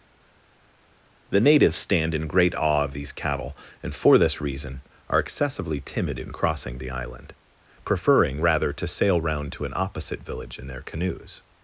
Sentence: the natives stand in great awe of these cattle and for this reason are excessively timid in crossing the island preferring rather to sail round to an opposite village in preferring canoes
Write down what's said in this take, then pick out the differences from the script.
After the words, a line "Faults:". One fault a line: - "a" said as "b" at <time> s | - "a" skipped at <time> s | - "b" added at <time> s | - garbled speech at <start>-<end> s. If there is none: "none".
the natives stand in great awe of these cattle and for this reason are excessively timid in crossing the island preferring rather to sail round to an opposite village in their canoes
Faults:
- "preferring" said as "their" at 10.7 s